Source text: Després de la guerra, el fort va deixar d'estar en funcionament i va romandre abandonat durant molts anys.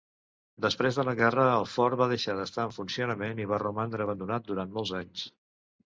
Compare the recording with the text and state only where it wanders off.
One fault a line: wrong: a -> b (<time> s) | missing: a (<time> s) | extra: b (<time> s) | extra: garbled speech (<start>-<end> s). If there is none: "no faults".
no faults